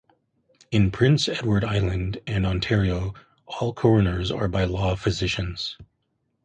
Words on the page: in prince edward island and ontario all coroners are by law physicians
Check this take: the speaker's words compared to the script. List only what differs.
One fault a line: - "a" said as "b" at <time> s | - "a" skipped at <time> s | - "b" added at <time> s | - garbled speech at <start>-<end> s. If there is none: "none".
none